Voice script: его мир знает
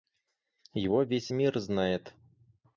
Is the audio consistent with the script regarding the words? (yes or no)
no